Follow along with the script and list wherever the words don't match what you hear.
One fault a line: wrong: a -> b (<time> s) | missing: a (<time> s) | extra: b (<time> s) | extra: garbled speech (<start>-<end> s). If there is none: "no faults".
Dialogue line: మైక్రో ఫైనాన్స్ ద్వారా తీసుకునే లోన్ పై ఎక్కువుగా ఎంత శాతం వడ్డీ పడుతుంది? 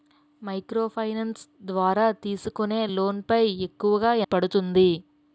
missing: ఎంత శాతం వడ్డీ (4.1 s)